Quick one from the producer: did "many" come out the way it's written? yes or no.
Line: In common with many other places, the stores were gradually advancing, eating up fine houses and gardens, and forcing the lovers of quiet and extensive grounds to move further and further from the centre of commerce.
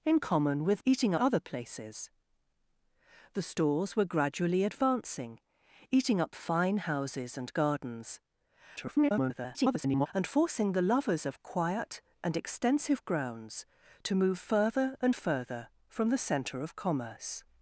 no